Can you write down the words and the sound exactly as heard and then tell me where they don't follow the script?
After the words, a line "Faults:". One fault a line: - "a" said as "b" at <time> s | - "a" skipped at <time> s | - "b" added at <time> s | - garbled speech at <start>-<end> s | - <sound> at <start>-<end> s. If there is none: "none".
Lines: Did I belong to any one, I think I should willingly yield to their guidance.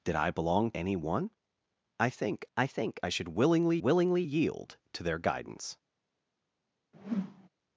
Did I belong any one, I think I think I should willingly willingly yield to their guidance.
Faults:
- "to" skipped at 0.7 s
- "think I" added at 2.7 s
- "willingly" added at 3.8 s
- whoosh at 6.9-7.5 s